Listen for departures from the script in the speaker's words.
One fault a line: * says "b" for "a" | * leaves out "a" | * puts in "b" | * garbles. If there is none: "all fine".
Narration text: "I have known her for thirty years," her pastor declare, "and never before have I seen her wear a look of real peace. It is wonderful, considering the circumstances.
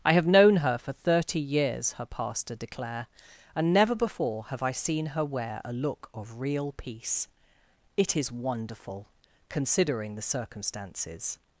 all fine